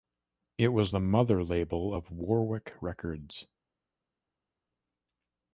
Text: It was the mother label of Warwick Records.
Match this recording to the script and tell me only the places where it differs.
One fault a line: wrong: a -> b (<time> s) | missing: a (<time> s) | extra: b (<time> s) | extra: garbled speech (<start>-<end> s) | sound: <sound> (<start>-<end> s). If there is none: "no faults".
no faults